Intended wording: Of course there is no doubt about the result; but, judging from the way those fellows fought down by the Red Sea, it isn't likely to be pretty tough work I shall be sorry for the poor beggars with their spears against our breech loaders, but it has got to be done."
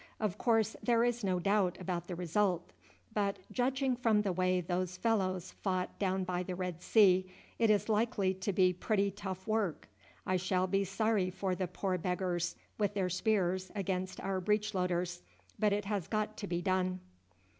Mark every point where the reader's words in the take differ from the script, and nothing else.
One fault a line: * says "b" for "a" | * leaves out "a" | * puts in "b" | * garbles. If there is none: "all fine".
* says "is" for "isn't"